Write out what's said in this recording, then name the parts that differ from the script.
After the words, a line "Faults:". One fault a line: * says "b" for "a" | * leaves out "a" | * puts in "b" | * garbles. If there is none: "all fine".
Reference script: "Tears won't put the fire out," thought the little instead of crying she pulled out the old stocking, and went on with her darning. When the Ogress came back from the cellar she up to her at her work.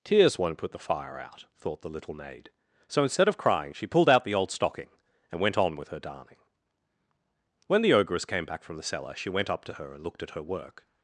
"Tears won't put the fire out," thought the little maid. So instead of crying she pulled out the old stocking, and went on with her darning. When the Ogress came back from the cellar she went up to her and looked at her work.
Faults:
* puts in "maid So"
* puts in "went"
* puts in "and looked"